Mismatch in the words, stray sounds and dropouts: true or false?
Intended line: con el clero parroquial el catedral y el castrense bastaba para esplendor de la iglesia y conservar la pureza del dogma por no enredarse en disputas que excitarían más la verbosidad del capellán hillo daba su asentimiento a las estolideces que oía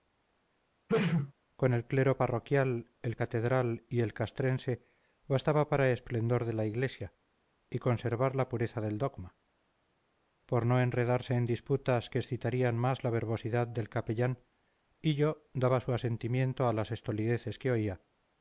true